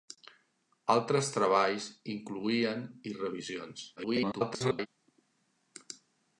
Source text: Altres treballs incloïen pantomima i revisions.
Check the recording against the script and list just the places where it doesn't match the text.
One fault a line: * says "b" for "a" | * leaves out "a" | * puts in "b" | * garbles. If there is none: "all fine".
* leaves out "pantomima"
* garbles